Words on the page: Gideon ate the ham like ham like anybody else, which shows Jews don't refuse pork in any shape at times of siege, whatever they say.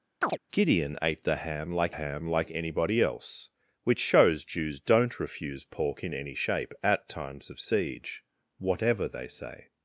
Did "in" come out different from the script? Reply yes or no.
no